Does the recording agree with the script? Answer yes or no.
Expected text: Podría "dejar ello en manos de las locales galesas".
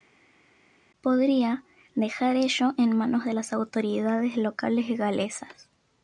no